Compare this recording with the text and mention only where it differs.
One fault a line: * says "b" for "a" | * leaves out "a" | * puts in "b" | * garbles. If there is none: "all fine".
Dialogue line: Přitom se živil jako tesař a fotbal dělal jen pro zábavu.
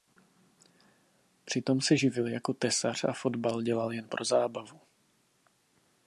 all fine